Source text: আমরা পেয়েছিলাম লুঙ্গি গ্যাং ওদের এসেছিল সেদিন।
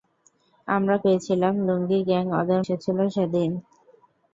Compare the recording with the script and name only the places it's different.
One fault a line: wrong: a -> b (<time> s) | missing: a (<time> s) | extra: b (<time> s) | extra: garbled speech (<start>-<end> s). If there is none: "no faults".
no faults